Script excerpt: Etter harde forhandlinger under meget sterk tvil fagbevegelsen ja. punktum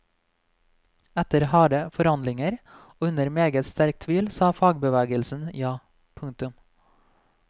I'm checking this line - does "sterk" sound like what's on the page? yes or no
yes